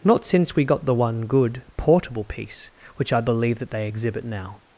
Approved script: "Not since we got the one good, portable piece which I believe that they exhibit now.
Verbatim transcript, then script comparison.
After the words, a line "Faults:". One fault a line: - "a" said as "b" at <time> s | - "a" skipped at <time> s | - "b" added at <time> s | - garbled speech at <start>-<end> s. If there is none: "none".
"Not since we got the one good, portable piece which I believe that they exhibit now.
Faults:
none